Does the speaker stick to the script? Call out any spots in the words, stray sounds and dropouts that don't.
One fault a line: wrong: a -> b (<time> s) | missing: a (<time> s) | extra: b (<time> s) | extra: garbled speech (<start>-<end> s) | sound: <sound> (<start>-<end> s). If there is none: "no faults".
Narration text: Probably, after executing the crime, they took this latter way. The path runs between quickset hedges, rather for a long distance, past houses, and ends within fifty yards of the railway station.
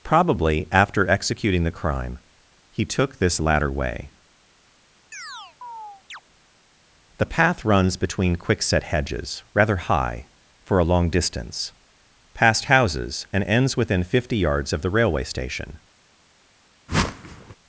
wrong: they -> he (2.7 s)
sound: chirp (5.1-6.2 s)
extra: high (9.8 s)
sound: whoosh (16.9-17.6 s)